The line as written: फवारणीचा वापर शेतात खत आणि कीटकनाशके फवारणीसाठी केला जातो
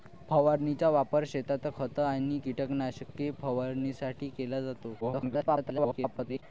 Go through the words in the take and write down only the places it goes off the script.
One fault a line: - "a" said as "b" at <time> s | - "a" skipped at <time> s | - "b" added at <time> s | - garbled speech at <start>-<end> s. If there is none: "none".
- garbled speech at 5.0-6.4 s